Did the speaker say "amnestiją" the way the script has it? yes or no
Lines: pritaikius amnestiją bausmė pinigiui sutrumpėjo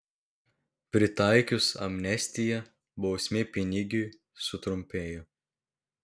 yes